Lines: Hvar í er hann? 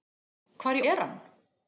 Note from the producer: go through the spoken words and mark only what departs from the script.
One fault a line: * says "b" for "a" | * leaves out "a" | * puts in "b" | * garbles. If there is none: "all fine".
all fine